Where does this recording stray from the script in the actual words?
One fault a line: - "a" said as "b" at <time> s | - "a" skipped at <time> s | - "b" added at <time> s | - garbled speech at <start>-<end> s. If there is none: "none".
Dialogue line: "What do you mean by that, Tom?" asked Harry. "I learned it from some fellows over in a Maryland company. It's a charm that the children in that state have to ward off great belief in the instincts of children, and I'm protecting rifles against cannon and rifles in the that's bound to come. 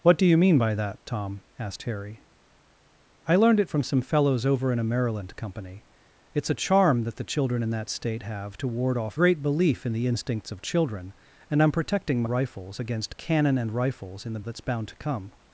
none